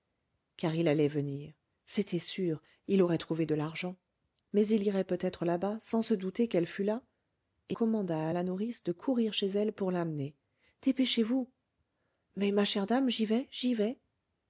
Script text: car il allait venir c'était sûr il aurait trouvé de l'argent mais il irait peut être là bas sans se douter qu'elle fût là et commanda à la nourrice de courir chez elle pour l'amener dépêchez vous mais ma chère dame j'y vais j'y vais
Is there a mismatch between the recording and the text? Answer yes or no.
no